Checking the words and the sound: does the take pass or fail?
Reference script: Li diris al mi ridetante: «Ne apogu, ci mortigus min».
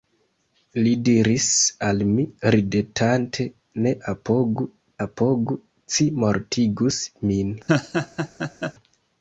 fail